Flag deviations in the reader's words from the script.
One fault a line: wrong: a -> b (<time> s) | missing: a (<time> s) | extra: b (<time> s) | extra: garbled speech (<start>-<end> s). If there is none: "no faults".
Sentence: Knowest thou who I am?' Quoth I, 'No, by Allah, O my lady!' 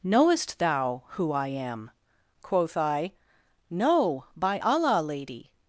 missing: O my (5.0 s)